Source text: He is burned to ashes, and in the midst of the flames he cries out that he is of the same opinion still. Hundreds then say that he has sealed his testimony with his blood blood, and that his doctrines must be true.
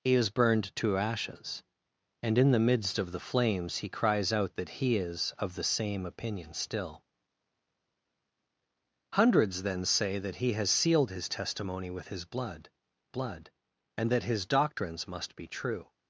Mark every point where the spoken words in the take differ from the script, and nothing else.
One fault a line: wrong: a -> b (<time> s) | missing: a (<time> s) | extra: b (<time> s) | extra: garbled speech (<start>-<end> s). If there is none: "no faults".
no faults